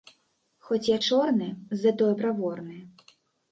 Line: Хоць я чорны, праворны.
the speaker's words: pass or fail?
fail